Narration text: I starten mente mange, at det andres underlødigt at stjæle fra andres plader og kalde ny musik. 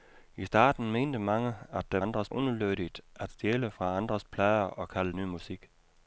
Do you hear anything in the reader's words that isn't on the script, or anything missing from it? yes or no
no